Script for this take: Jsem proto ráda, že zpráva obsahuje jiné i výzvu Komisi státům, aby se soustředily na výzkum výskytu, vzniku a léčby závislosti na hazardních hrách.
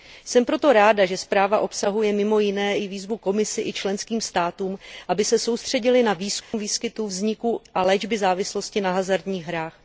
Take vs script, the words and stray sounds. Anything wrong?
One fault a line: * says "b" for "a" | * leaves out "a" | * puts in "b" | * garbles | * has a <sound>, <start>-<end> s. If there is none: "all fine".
* puts in "mimo"
* puts in "i členským"
* has a dropout, 6.4-6.5 s